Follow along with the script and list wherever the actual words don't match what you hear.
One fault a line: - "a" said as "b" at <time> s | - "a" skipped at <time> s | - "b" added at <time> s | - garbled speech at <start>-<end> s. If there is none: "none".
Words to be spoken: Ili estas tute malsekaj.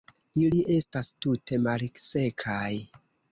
none